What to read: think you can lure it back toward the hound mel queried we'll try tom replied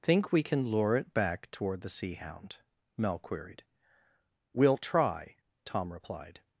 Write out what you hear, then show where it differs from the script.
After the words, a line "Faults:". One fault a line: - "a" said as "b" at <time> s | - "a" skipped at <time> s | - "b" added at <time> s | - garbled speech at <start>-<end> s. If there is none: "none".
think we can lure it back toward the sea hound mel queried we'll try tom replied
Faults:
- "you" said as "we" at 0.3 s
- "sea" added at 1.9 s